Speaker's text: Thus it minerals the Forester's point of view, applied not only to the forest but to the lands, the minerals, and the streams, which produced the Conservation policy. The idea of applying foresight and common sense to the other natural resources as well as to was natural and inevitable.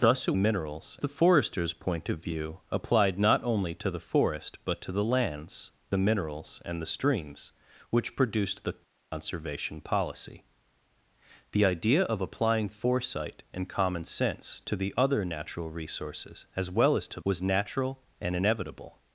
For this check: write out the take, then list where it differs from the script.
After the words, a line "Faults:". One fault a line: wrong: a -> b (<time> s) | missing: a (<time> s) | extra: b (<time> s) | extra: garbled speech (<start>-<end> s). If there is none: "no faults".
Thus it minerals the Forester's point of view, applied not only to the forest but to the lands, the minerals, and the streams, which produced the Conservation policy. The idea of applying foresight and common sense to the other natural resources as well as to was natural and inevitable.
Faults:
no faults